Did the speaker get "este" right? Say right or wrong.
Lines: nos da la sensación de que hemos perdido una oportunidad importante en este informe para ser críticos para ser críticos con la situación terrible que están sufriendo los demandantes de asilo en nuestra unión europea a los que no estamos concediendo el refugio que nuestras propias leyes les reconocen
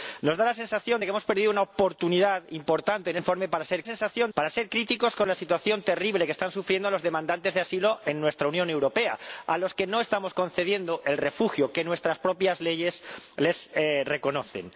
wrong